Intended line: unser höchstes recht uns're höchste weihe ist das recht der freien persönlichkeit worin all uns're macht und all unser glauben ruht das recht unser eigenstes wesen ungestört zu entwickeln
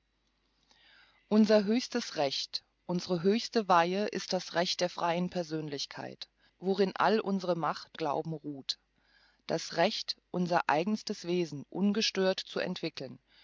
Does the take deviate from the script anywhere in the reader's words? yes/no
yes